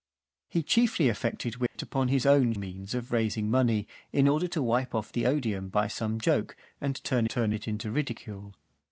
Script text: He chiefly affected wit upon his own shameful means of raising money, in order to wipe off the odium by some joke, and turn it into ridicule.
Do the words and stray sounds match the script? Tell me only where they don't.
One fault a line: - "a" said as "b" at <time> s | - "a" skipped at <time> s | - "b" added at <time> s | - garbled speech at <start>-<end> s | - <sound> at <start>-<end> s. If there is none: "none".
- dropout at 1.7-1.8 s
- "shameful" skipped at 2.5 s
- "turn" added at 7.3 s